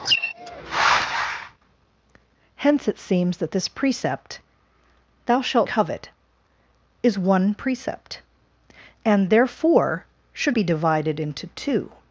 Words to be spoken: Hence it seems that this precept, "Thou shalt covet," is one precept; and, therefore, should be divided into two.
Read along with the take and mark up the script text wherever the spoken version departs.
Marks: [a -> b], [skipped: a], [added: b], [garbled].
Hence it seems that this precept, "Thou shalt covet," is one precept; and, therefore, should be divided into two.